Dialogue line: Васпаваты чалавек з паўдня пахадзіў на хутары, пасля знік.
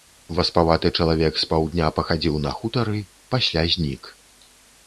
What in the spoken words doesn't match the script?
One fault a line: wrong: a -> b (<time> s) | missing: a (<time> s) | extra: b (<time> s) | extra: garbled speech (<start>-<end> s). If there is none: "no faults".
no faults